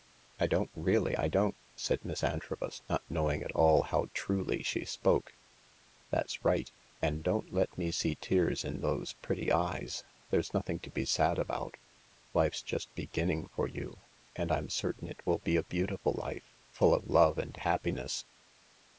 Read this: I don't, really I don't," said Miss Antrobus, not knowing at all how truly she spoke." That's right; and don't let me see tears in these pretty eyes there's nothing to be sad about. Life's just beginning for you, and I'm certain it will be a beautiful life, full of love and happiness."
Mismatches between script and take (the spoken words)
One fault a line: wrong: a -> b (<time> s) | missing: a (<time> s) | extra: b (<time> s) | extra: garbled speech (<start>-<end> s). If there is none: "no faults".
wrong: these -> those (8.8 s)